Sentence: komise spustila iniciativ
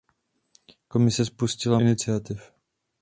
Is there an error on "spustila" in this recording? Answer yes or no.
no